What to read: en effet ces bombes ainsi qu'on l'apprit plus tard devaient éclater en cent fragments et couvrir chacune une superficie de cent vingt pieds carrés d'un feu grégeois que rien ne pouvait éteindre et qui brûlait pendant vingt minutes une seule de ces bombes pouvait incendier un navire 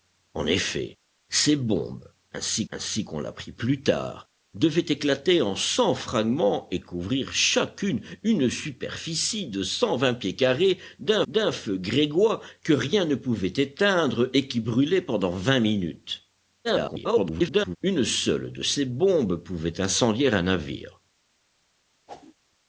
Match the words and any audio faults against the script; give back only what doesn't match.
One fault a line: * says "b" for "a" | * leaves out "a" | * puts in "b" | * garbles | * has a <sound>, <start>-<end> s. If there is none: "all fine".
* puts in "ainsi"
* puts in "d'un"
* garbles
* has a whoosh, 22.1-22.3 s